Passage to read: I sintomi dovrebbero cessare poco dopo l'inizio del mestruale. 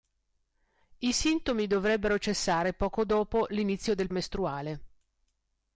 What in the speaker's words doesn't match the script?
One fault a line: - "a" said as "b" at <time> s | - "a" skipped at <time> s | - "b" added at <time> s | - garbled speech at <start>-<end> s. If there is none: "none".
none